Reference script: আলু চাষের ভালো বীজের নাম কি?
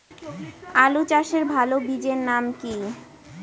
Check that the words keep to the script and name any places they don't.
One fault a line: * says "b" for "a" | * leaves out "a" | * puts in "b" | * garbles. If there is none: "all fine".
all fine